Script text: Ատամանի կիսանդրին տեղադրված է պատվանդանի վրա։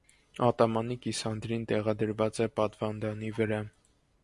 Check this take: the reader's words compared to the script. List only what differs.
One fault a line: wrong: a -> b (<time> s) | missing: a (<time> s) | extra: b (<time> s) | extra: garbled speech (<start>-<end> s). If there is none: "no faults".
no faults